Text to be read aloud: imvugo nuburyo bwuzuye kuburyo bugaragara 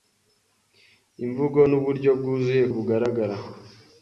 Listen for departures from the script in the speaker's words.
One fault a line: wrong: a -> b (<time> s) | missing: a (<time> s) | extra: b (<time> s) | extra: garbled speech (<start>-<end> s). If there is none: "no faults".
missing: kuburyo (2.6 s)